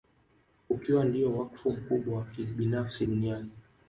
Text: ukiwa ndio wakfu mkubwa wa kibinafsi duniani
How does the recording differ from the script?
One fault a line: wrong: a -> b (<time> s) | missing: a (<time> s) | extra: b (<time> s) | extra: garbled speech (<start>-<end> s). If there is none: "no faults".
no faults